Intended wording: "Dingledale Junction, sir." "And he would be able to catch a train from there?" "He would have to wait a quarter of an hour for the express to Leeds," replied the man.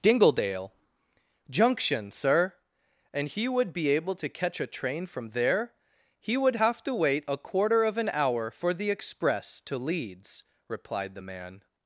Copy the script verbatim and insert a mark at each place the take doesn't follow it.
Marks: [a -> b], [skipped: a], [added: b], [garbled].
"Dingledale Junction, sir." "And he would be able to catch a train from there?" "He would have to wait a quarter of an hour for the express to Leeds," replied the man.